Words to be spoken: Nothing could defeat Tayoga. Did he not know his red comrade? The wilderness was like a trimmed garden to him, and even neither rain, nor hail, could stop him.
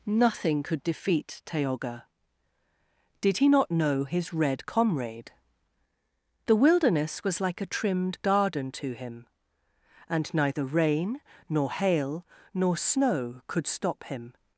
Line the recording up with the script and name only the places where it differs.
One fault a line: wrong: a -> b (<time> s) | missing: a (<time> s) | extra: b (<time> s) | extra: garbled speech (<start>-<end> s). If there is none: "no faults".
missing: even (10.3 s)
extra: nor snow (12.5 s)